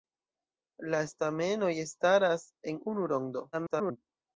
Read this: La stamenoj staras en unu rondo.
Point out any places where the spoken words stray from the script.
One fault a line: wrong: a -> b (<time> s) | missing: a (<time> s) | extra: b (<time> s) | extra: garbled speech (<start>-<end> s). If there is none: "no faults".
extra: garbled speech (3.5-4.0 s)